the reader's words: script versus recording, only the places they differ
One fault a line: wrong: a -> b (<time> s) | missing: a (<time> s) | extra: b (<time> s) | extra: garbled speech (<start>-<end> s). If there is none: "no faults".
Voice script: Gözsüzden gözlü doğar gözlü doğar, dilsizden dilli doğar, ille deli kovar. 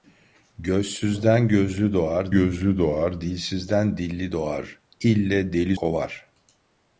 no faults